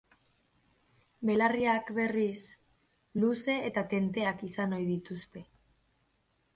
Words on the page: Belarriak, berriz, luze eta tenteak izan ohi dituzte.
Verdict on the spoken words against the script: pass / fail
pass